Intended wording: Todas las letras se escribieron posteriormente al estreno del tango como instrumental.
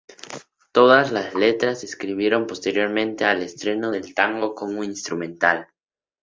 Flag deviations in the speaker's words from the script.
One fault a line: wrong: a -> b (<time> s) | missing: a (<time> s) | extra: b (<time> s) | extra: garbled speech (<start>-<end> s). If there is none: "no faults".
no faults